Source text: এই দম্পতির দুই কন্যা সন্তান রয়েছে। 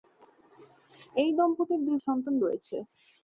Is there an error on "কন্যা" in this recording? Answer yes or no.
yes